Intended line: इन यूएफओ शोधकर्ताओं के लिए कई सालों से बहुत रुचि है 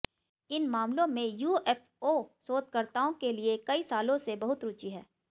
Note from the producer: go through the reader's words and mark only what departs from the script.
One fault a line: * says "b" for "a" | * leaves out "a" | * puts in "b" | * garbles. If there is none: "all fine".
* puts in "मामलों में"